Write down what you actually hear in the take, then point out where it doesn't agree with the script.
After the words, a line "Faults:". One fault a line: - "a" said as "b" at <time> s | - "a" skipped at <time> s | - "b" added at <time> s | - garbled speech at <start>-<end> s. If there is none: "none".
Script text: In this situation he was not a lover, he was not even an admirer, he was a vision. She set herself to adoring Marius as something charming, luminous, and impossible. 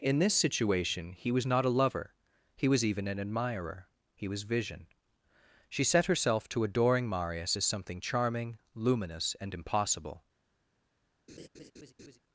In this situation he was not a lover, he was even an admirer, he was vision. She set herself to adoring Marius as something charming, luminous, and impossible.
Faults:
- "not" skipped at 2.8 s
- "a" skipped at 4.4 s